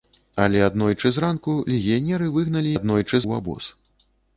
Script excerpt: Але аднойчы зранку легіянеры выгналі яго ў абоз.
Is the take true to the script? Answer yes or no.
no